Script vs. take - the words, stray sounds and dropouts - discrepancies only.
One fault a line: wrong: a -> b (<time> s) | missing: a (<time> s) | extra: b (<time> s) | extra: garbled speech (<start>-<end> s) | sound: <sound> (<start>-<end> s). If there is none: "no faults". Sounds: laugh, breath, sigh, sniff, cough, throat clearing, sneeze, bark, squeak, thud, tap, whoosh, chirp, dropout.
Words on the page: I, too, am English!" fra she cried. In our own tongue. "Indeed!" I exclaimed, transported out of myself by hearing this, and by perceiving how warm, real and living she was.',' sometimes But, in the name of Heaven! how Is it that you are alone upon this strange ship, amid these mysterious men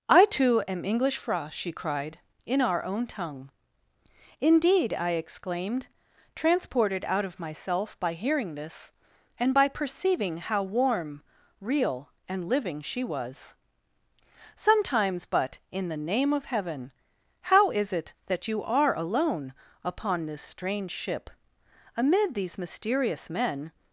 no faults